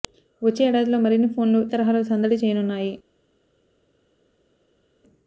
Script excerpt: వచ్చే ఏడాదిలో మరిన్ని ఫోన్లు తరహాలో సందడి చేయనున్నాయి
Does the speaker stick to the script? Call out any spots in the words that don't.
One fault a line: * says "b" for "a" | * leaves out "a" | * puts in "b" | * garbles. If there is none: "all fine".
all fine